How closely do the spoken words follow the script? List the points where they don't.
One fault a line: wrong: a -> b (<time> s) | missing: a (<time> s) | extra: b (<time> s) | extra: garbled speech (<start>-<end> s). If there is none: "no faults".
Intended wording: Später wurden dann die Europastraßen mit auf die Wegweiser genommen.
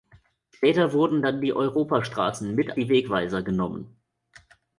missing: auf (2.8 s)